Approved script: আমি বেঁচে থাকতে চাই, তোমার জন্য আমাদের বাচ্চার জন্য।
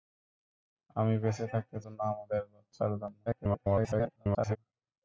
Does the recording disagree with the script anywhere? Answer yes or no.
yes